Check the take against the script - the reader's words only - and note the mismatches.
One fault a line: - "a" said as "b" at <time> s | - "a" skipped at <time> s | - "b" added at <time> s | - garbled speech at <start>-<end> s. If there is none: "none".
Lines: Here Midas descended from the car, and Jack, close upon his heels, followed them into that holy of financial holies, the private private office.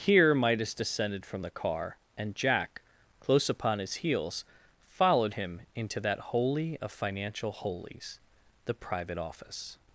- "them" said as "him" at 5.3 s
- "private" skipped at 9.2 s